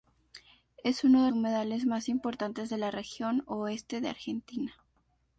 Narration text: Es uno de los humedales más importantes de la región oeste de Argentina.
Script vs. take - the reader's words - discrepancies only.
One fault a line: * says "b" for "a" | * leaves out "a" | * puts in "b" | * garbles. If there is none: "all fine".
* leaves out "los"